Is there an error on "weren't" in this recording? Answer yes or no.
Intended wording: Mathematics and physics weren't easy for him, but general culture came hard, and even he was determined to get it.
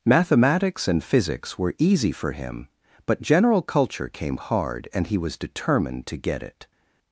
yes